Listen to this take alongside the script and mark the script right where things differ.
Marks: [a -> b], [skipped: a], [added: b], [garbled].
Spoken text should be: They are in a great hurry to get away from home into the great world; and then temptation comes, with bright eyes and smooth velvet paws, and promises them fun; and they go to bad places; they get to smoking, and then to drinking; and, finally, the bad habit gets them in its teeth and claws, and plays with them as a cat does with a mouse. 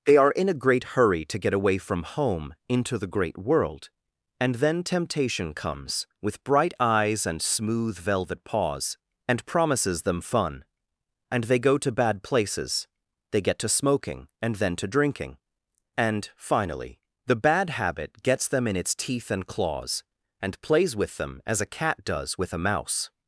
They are in a great hurry to get away from home into the great world; and then temptation comes, with bright eyes and smooth velvet paws, and promises them fun; and they go to bad places; they get to smoking, and then to drinking; and, finally, the bad habit gets them in its teeth and claws, and plays with them as a cat does with a mouse.